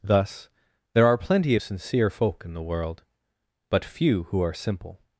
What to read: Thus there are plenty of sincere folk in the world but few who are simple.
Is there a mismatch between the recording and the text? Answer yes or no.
no